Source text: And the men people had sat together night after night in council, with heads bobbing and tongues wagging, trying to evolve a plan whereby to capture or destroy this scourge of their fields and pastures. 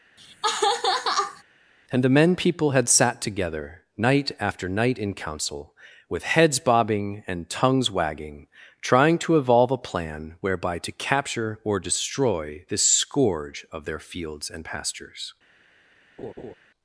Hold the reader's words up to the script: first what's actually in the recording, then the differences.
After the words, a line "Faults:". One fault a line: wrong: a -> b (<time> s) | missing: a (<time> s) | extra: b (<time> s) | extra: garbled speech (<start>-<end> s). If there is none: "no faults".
And the men people had sat together night after night in council, with heads bobbing and tongues wagging, trying to evolve a plan whereby to capture or destroy this scourge of their fields and pastures.
Faults:
no faults